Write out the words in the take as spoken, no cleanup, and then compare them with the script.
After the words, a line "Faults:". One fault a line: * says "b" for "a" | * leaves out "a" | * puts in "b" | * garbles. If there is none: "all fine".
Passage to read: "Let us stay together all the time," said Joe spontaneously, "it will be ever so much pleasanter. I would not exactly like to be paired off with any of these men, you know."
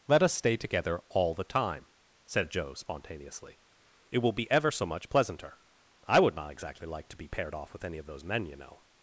"Let us stay together all the time," said Joe spontaneously, "it will be ever so much pleasanter. I would not exactly like to be paired off with any of those men, you know."
Faults:
* says "those" for "these"